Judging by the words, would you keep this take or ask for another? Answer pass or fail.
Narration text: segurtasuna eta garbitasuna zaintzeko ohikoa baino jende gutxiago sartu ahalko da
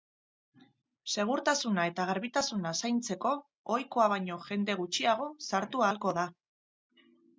pass